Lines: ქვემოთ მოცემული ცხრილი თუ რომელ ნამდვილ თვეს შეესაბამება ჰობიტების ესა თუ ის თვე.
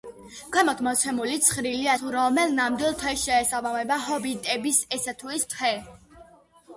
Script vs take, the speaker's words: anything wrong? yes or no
no